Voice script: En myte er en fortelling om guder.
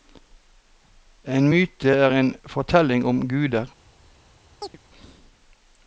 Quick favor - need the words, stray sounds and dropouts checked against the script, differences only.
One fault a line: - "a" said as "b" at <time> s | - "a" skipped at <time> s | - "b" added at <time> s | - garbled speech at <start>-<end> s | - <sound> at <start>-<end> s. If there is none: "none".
- chirp at 4.6-4.8 s